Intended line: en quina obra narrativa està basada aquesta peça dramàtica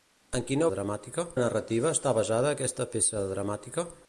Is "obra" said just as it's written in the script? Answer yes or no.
no